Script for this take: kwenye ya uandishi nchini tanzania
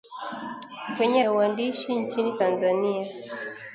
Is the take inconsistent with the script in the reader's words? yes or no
no